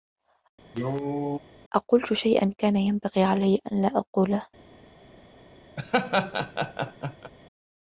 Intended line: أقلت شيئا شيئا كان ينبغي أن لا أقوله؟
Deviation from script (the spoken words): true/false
true